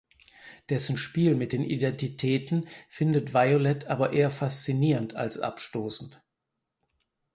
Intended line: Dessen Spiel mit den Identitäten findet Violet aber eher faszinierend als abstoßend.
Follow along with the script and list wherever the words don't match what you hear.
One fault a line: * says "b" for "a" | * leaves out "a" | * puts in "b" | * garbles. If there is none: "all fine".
all fine